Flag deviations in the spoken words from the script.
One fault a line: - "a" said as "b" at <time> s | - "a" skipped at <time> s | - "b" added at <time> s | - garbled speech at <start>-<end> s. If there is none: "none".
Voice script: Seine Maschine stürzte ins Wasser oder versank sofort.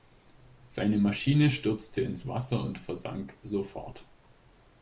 - "oder" said as "und" at 2.6 s